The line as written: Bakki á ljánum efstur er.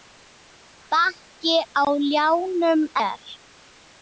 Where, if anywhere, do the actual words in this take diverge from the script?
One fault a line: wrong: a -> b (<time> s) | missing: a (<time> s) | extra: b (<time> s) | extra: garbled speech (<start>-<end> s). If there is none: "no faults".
missing: efstur (2.8 s)